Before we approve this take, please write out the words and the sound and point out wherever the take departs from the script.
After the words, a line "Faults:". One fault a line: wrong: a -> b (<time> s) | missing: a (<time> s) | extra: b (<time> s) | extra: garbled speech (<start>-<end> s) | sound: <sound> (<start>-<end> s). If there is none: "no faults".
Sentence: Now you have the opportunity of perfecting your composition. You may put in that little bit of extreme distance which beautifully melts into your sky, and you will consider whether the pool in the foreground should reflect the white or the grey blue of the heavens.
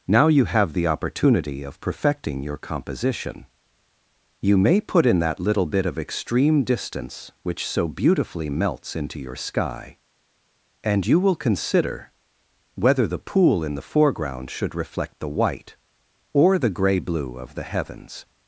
Now you have the opportunity of perfecting your composition. You may put in that little bit of extreme distance which so beautifully melts into your sky, and you will consider whether the pool in the foreground should reflect the white or the grey blue of the heavens.
Faults:
extra: so (7.7 s)